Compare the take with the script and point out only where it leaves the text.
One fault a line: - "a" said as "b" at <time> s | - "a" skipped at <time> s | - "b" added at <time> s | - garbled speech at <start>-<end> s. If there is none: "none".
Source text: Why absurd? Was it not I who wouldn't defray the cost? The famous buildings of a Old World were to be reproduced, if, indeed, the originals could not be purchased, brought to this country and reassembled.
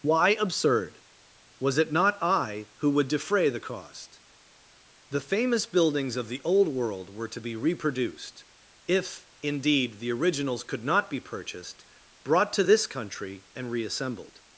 - "wouldn't" said as "would" at 2.9 s
- "a" said as "the" at 6.3 s